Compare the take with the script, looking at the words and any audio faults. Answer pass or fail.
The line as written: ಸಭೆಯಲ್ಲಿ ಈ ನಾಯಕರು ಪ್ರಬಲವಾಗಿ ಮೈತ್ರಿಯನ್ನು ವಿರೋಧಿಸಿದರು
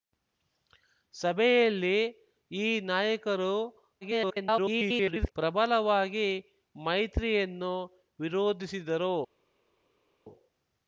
fail